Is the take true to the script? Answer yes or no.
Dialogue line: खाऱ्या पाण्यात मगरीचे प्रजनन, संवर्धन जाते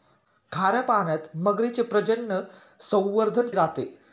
yes